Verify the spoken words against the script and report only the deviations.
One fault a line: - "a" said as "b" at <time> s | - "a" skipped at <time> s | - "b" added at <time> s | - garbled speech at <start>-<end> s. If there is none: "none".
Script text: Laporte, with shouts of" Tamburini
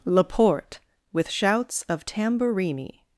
none